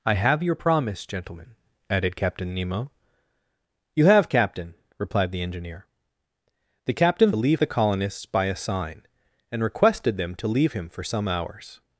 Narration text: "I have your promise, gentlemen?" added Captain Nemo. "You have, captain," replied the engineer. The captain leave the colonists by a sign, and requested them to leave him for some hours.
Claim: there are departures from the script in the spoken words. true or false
false